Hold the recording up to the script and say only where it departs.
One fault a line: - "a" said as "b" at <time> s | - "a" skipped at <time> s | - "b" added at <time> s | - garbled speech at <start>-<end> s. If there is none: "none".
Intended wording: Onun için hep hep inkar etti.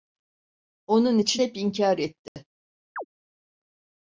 - "hep" skipped at 1.6 s